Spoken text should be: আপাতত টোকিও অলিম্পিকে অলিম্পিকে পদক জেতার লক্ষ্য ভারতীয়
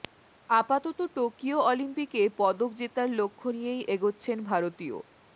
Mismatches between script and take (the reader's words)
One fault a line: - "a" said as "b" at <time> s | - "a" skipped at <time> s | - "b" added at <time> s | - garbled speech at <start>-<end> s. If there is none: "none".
- "অলিম্পিকে" skipped at 2.2 s
- "নিয়েই এগোচ্ছেন" added at 3.5 s